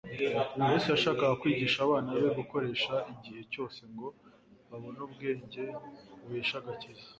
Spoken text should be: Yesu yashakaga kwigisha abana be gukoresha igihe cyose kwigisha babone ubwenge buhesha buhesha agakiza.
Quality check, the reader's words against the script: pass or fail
fail